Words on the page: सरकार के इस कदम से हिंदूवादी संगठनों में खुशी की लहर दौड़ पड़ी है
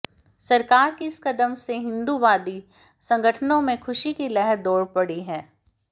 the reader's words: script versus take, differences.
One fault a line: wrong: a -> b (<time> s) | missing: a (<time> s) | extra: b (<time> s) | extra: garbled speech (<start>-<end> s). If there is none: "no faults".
no faults